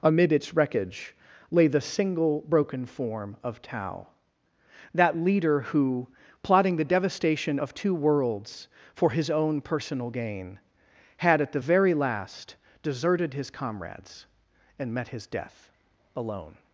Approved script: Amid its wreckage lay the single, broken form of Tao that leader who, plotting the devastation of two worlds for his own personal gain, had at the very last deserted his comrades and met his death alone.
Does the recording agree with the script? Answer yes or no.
yes